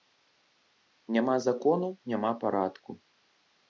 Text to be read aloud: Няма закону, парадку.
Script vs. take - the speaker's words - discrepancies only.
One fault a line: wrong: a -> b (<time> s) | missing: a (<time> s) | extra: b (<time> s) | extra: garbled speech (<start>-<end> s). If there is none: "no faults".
extra: няма (2.1 s)